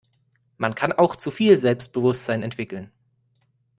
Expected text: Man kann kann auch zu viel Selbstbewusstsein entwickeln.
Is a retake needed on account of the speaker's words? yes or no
yes